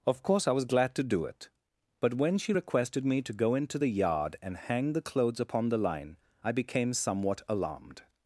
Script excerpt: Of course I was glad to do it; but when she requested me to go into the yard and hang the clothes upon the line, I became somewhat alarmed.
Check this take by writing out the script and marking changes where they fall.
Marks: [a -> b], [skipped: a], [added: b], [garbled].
Of course I was glad to do it; but when she requested me to go into the yard and hang the clothes upon the line, I became somewhat alarmed.